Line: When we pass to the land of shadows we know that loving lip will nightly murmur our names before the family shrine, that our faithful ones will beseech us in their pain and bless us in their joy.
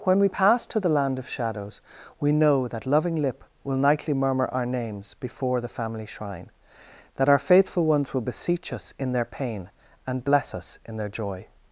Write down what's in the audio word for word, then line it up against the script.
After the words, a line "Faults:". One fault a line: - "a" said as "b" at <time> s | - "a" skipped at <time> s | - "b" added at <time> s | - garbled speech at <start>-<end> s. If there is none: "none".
When we pass to the land of shadows we know that loving lip will nightly murmur our names before the family shrine, that our faithful ones will beseech us in their pain and bless us in their joy.
Faults:
none